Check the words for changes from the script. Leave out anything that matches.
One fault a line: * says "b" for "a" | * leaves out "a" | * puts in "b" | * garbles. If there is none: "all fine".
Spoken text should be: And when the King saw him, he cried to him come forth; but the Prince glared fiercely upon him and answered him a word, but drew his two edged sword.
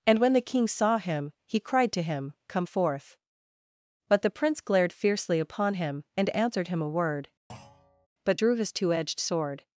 all fine